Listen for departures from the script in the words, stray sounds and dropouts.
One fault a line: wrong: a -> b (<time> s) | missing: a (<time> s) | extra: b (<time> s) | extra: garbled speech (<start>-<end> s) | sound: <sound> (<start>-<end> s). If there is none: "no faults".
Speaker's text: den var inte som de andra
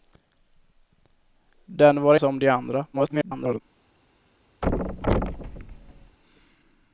missing: inte (2.1 s)
extra: garbled speech (2.9-3.6 s)
sound: thud (4.6-6.2 s)